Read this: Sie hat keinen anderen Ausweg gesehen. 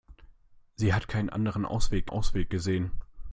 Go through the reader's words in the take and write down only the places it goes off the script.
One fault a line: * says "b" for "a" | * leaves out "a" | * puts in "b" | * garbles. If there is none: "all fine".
* puts in "Ausweg"